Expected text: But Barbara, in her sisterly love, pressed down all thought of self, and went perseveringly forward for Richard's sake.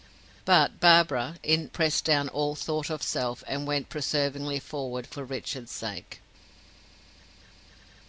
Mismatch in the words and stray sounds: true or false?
true